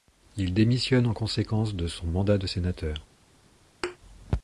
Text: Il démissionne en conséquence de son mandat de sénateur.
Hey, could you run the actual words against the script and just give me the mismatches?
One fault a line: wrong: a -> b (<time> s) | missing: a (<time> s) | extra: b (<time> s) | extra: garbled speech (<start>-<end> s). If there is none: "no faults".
no faults